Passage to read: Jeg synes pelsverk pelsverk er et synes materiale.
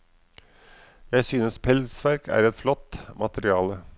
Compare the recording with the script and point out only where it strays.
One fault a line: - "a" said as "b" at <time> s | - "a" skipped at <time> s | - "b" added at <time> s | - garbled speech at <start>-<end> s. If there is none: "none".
- "pelsverk" skipped at 2.3 s
- "synes" said as "flott" at 2.5 s